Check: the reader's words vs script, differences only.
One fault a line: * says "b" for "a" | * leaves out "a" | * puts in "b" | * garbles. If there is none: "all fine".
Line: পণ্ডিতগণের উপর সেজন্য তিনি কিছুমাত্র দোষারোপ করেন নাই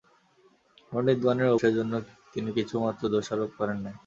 * leaves out "উপর"